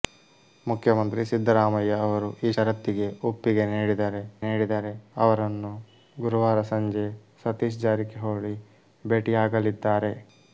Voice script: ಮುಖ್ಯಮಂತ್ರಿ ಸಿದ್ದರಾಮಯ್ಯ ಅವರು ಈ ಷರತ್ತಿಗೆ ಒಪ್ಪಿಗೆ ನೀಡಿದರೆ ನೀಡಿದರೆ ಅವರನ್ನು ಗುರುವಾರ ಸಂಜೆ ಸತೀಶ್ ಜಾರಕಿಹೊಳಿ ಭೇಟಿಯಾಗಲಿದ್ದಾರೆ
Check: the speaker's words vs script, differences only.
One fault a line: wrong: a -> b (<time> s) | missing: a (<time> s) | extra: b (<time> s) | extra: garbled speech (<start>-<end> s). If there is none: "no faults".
no faults